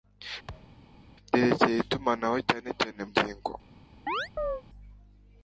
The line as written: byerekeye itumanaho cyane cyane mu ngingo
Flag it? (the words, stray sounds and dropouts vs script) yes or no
yes